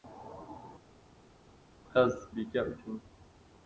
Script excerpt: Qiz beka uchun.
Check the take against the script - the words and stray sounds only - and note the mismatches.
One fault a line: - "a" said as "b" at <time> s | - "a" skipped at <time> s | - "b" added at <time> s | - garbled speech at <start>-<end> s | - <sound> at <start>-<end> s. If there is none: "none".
none